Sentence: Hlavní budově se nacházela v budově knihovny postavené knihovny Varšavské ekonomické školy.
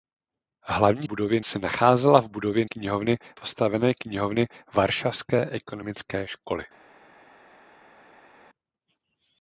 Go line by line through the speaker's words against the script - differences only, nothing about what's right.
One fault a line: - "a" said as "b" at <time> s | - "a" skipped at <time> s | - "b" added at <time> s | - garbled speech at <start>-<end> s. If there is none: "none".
none